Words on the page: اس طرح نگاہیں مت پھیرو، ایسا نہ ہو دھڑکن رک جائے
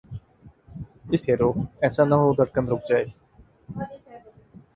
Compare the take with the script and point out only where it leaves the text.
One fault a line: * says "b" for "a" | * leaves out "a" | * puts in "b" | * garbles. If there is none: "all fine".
* leaves out "طرح نگاہیں مت"